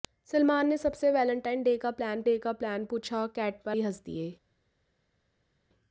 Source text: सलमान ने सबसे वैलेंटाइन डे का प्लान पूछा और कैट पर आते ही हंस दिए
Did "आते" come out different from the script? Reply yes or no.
yes